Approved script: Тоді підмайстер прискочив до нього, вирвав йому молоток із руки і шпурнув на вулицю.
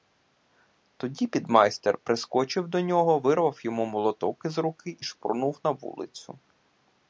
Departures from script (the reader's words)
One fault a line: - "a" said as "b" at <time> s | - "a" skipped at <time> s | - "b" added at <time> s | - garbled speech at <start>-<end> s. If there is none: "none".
none